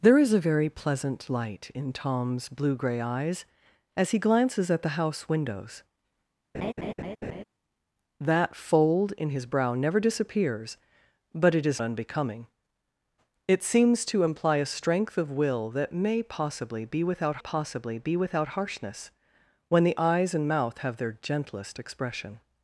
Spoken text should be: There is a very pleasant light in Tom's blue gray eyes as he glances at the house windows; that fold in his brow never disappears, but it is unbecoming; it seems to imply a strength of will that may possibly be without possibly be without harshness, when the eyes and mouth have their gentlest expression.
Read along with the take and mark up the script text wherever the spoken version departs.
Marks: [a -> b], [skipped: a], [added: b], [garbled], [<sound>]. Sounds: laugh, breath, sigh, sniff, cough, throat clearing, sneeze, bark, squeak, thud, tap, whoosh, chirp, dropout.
There is a very pleasant light in Tom's blue gray eyes as he glances at the house windows; [laugh] that fold in his brow never disappears, but it is unbecoming; it seems to imply a strength of will that may possibly be without possibly be without harshness, when the eyes and mouth have their gentlest expression.